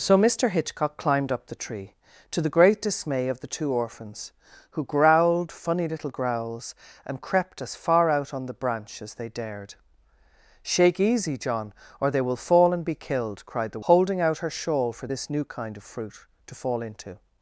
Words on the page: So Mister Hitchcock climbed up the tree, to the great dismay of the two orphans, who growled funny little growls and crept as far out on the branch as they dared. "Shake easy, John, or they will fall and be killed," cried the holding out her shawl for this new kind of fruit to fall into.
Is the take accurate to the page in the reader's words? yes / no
yes